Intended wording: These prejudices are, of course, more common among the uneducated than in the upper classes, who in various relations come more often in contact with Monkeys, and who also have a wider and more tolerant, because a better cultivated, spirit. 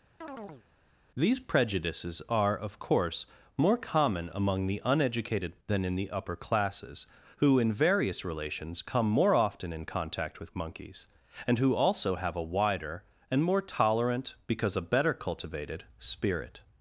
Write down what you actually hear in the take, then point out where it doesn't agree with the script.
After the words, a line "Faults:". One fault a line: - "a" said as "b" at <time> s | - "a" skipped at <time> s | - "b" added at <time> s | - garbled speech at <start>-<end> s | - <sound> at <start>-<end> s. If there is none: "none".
These prejudices are, of course, more common among the uneducated than in the upper classes, who in various relations come more often in contact with Monkeys, and who also have a wider and more tolerant, because a better cultivated, spirit.
Faults:
- chirp at 0.2-0.6 s